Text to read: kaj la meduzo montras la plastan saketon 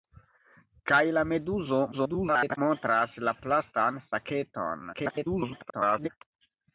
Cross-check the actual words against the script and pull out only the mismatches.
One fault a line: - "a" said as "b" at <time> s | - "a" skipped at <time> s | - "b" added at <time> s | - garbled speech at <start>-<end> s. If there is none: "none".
- garbled speech at 1.9-2.6 s
- garbled speech at 4.9-6.1 s